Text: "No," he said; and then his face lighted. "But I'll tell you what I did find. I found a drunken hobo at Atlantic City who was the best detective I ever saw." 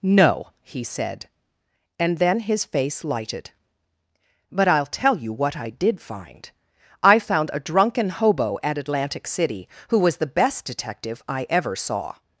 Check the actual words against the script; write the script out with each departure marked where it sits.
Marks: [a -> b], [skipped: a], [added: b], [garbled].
"No," he said; and then his face lighted. "But I'll tell you what I did find. I found a drunken hobo at Atlantic City who was the best detective I ever saw."